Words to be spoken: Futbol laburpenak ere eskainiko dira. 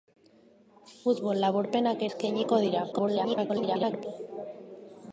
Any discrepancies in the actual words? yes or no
yes